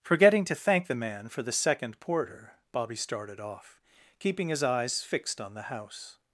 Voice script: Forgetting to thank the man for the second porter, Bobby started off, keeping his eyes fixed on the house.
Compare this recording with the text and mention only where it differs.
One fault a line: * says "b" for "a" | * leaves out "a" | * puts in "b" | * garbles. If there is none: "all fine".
all fine